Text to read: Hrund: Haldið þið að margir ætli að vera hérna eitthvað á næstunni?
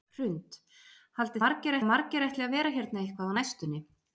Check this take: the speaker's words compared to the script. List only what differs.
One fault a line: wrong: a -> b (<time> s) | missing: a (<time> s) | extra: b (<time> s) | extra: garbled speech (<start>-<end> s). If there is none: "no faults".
wrong: þið -> margir (1.4 s)